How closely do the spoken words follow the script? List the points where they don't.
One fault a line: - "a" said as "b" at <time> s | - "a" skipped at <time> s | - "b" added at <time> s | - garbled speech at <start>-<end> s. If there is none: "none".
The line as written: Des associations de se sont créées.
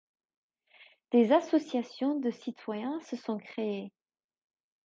- "citoyens" added at 2.3 s